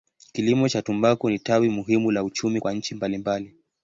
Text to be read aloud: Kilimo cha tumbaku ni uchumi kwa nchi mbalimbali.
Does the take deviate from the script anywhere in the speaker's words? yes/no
yes